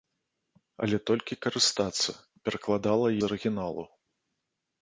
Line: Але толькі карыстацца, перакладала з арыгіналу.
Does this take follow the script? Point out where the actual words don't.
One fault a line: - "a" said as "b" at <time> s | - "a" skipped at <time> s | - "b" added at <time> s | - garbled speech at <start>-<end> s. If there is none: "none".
none